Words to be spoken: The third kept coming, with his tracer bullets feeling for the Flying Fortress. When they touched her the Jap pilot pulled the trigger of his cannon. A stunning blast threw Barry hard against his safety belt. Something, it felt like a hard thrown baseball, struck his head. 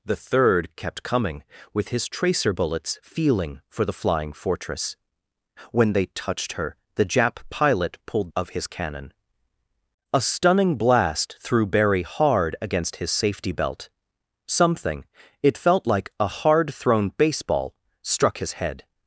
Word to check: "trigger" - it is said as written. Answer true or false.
false